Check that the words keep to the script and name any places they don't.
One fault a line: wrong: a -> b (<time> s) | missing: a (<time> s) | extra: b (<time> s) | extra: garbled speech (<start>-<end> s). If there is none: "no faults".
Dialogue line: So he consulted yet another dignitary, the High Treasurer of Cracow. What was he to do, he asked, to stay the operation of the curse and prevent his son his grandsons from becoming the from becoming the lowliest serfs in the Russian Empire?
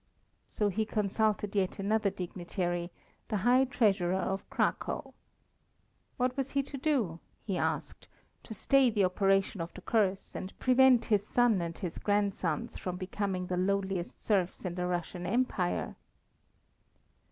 extra: and (11.6 s)
missing: from becoming the (13.6 s)